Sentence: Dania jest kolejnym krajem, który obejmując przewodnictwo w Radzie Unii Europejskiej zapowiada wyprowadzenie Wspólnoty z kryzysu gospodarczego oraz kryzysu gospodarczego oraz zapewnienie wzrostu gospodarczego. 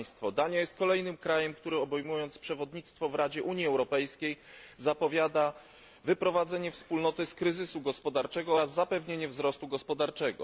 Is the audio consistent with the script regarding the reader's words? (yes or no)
no